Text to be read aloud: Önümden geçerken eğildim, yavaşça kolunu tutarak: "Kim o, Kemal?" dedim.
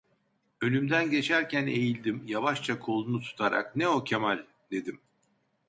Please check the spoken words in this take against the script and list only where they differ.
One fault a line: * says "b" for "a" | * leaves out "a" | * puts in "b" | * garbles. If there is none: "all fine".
* says "Ne" for "Kim"